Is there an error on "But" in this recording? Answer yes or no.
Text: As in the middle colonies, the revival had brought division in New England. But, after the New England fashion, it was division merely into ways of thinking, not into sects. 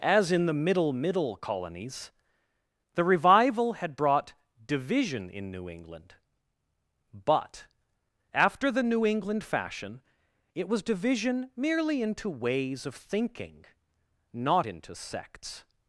no